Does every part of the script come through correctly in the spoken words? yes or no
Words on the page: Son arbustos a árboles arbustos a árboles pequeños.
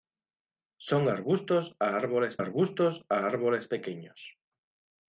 yes